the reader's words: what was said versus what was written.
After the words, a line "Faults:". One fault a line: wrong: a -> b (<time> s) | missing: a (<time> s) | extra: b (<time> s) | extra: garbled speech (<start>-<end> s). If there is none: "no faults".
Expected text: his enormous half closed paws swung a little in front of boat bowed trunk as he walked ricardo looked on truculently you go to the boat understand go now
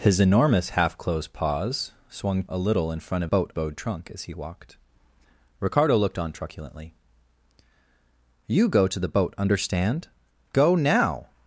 his enormous half closed paws swung a little in front of boat bowed trunk as he walked ricardo looked on truculently you go to the boat understand go now
Faults:
no faults